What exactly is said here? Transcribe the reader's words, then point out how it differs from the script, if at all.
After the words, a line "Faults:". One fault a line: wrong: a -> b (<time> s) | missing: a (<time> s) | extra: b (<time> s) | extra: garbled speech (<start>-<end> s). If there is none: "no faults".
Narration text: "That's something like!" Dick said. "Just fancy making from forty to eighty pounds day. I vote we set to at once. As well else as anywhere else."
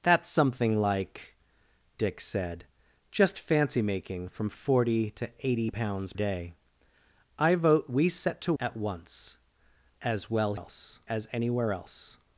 "That's something like!" Dick said. "Just fancy making from forty to eighty pounds day. I vote we set to at once. As well else as anywhere else."
Faults:
no faults